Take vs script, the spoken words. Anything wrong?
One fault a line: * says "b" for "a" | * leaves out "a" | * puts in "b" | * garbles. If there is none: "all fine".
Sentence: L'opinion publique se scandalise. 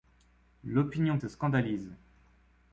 * leaves out "publique"